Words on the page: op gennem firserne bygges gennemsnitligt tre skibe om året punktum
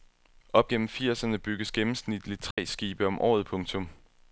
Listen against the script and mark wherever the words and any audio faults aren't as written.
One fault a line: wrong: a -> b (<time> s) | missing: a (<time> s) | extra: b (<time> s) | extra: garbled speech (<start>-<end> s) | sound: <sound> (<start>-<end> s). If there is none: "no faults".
sound: dropout (2.5-2.6 s)